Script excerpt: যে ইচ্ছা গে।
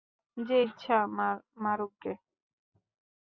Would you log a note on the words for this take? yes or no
yes